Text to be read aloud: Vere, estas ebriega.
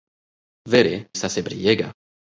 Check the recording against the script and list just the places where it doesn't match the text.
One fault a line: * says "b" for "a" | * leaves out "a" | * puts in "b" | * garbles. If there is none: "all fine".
all fine